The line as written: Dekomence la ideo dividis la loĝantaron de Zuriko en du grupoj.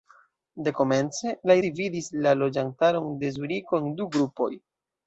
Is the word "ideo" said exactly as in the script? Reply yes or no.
no